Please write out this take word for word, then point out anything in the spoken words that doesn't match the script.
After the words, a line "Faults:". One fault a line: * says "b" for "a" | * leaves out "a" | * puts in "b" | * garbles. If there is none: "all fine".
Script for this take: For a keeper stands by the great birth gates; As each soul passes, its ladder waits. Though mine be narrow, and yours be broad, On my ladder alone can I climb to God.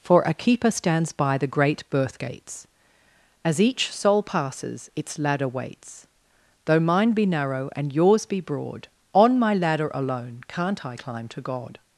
For a keeper stands by the great birth gates; As each soul passes, its ladder waits. Though mine be narrow, and yours be broad, On my ladder alone can't I climb to God.
Faults:
* says "can't" for "can"